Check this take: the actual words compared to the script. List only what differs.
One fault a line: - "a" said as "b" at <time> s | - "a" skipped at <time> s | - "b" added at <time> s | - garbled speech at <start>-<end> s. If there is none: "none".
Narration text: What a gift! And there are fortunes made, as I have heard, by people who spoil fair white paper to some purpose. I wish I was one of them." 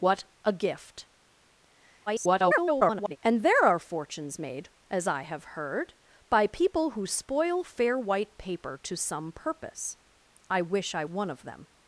- garbled speech at 2.1-3.2 s
- "was" skipped at 11.0 s